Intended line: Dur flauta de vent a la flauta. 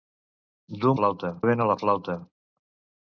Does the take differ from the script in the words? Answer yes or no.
no